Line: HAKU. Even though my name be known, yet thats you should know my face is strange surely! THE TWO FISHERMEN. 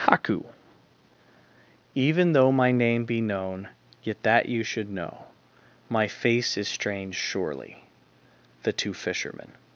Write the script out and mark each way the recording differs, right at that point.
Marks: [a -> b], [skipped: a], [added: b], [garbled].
HAKU. Even though my name be known, yet [thats -> that] you should know my face is strange surely! THE TWO FISHERMEN.